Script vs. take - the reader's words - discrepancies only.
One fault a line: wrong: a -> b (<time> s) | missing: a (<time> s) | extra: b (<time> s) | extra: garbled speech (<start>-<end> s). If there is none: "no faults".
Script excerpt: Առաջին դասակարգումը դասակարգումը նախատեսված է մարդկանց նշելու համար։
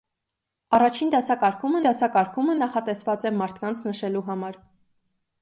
no faults